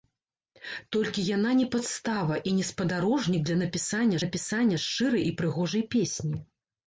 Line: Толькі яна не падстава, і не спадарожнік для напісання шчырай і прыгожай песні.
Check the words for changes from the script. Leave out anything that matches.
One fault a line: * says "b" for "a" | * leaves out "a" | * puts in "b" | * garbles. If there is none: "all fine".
* puts in "напісання"